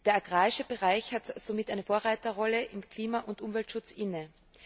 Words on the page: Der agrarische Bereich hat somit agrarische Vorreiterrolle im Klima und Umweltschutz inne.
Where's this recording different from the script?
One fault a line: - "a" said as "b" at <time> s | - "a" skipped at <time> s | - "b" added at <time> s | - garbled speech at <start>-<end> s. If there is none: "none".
- "agrarische" said as "eine" at 1.7 s